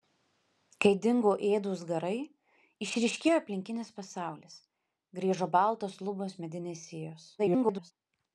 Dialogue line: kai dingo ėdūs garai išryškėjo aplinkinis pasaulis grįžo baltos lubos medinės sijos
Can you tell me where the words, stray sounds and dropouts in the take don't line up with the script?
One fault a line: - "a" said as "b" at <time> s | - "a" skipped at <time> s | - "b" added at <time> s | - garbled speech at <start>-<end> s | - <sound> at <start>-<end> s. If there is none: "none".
- garbled speech at 7.4-7.9 s